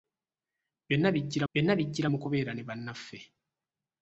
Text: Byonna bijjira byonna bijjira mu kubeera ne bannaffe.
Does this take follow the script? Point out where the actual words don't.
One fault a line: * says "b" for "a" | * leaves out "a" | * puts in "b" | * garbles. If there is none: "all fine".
all fine